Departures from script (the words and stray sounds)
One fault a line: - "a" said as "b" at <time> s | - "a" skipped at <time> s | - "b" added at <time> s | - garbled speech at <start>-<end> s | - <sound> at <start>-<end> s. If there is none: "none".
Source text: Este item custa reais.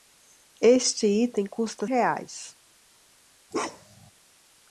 - bark at 3.5-4.1 s